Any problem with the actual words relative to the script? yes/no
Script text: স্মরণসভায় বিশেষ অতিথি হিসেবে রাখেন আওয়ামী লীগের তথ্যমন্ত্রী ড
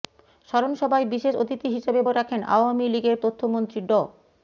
no